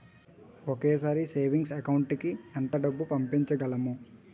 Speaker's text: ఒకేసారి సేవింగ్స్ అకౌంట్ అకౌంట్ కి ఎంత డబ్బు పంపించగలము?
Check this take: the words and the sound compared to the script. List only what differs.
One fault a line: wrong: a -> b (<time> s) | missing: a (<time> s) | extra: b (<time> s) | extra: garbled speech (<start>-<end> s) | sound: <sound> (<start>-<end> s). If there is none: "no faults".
missing: అకౌంట్ (2.1 s)